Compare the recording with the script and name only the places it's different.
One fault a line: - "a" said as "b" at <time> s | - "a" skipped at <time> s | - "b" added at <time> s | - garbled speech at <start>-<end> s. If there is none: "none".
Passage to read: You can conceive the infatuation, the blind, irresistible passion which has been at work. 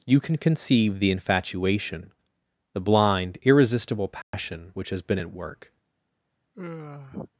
none